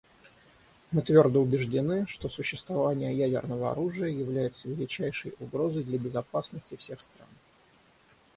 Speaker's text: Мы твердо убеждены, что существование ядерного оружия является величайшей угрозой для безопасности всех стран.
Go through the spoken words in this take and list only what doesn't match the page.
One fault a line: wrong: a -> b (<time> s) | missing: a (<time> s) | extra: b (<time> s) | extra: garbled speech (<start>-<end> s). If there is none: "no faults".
no faults